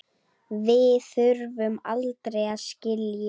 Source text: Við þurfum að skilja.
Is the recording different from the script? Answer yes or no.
yes